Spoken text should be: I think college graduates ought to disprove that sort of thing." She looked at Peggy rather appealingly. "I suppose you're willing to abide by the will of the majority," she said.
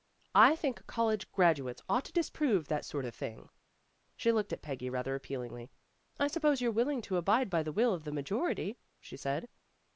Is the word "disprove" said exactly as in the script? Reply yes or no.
yes